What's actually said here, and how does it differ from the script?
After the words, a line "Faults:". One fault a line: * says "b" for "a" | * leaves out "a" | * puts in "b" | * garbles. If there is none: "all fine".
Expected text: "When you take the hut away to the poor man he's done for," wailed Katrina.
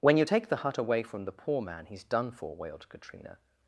"When you take the hut away from the poor man he's done for," wailed Katrina.
Faults:
* says "from" for "to"